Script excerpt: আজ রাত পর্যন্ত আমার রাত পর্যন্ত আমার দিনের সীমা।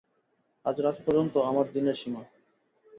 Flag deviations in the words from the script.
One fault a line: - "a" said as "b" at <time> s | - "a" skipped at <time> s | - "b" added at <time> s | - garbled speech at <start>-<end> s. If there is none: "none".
- "রাত পর্যন্ত আমার" skipped at 1.6 s